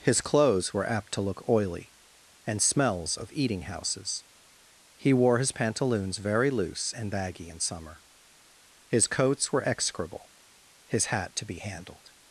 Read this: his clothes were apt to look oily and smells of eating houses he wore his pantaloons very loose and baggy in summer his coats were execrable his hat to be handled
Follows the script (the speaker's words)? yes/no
yes